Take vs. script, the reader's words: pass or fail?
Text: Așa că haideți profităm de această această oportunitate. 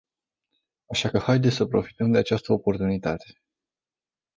fail